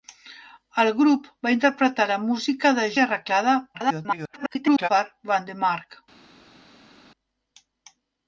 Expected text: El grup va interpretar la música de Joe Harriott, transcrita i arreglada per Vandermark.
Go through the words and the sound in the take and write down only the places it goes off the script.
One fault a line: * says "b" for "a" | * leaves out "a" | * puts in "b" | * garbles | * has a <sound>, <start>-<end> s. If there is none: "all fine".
* leaves out "Joe Harriott transcrita"
* garbles